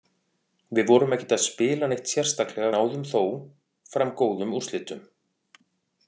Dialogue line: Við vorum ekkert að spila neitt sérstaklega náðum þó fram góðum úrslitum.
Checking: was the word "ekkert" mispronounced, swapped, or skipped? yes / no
no